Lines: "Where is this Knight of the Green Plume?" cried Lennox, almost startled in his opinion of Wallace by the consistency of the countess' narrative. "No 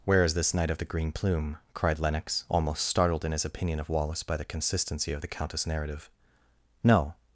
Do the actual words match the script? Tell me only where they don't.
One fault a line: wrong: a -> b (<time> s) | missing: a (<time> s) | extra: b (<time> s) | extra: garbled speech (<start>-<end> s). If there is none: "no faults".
no faults